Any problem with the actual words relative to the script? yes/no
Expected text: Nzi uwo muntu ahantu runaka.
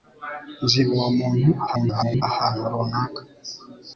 yes